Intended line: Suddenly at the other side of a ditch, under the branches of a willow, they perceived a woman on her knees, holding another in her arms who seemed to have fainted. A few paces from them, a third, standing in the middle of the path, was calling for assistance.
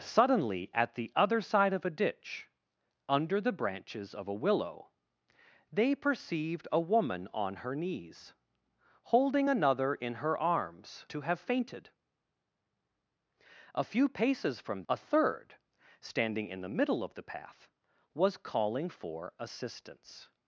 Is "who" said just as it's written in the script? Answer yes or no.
no